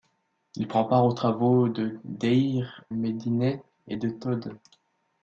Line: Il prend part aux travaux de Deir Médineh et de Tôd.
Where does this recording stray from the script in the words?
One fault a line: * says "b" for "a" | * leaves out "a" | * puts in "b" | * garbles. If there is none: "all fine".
all fine